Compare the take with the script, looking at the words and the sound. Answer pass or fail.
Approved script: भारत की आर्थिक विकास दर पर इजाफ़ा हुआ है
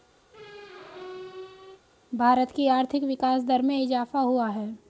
fail